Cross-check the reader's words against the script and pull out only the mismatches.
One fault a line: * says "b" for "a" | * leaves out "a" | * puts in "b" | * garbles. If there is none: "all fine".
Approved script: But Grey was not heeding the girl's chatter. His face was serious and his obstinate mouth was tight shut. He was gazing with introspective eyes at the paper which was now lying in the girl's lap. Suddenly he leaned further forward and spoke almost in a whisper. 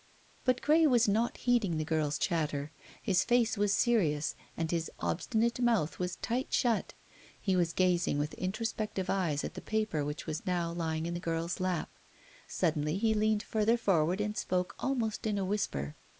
all fine